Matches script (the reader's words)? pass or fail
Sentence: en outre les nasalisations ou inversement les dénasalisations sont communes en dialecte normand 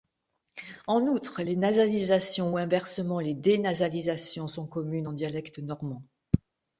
pass